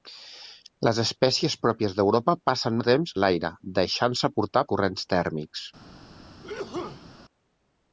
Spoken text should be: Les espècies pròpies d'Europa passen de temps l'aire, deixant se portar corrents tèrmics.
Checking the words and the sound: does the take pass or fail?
fail